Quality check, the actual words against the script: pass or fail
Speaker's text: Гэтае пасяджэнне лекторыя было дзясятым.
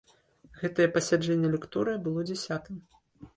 pass